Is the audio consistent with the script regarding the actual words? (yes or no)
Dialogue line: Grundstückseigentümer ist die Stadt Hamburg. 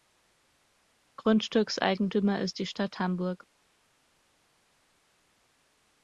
yes